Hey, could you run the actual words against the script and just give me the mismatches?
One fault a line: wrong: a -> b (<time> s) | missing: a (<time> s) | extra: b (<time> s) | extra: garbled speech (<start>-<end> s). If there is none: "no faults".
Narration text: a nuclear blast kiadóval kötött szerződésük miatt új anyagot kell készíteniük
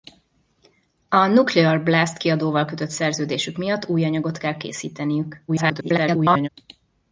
extra: garbled speech (5.5-6.5 s)